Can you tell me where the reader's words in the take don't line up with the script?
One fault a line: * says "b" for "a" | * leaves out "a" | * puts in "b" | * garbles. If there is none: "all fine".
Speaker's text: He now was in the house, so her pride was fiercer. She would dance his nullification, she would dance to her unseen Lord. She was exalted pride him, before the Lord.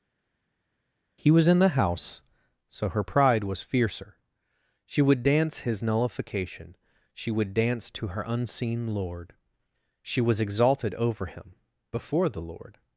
* leaves out "now"
* says "over" for "pride"